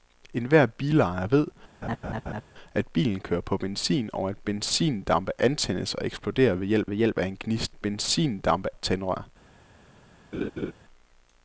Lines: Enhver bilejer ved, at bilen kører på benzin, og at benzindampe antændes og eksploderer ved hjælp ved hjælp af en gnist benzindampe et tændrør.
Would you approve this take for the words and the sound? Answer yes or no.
no